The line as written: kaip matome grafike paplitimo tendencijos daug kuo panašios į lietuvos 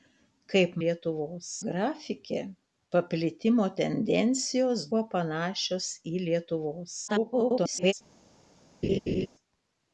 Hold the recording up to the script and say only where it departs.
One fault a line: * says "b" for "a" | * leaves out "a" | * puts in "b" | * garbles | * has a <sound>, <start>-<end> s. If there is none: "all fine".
* says "lietuvos" for "matome"
* leaves out "daug"
* garbles
* has a laugh, 8.8-9.3 s